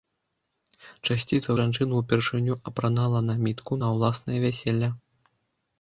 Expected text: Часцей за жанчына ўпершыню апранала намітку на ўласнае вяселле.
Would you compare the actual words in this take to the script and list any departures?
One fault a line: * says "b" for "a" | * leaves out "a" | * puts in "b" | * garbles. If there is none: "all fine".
all fine